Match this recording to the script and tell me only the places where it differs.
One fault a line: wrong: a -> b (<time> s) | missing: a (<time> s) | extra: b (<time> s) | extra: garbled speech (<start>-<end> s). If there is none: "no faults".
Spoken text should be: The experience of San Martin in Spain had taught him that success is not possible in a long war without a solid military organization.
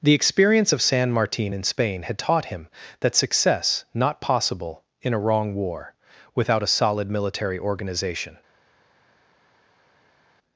missing: is (3.9 s)
wrong: long -> wrong (5.2 s)